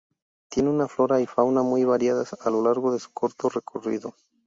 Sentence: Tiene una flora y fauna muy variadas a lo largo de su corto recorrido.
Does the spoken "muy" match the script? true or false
true